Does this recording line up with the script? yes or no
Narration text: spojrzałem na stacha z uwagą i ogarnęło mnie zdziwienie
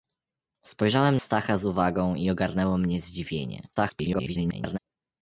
no